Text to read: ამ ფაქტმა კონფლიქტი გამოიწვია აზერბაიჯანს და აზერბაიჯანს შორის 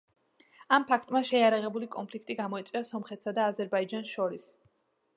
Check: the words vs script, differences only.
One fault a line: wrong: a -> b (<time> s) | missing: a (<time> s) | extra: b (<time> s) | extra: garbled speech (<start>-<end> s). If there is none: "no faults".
extra: შეიარაღებული (1.3 s)
wrong: აზერბაიჯანს -> სომხეთსა (2.9 s)